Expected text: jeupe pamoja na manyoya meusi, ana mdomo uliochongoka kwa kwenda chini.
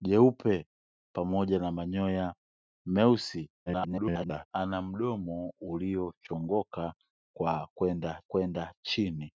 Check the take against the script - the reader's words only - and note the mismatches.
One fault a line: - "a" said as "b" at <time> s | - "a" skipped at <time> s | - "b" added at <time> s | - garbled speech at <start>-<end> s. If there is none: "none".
- garbled speech at 3.7-4.5 s
- "kwenda" added at 8.3 s